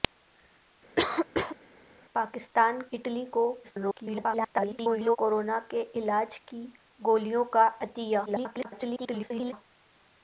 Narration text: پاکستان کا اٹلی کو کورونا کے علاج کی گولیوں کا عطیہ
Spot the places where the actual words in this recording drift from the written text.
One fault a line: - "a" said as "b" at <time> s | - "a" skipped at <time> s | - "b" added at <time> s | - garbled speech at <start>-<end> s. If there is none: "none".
- "کا" skipped at 2.8 s
- garbled speech at 3.6-5.2 s
- garbled speech at 8.3-9.5 s